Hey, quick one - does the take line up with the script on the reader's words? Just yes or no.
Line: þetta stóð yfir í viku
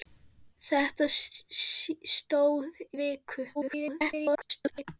no